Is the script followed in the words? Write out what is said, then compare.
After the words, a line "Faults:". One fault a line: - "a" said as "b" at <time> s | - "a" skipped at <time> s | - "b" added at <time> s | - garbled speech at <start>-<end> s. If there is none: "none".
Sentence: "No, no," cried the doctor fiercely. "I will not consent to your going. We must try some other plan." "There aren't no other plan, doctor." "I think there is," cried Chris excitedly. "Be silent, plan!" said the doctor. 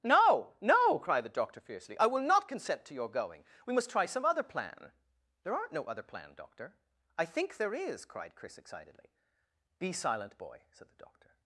"No, no," cried the doctor fiercely. "I will not consent to your going. We must try some other plan." "There aren't no other plan, doctor." "I think there is," cried Chris excitedly. "Be silent, boy!" said the doctor.
Faults:
- "plan" said as "boy" at 10.4 s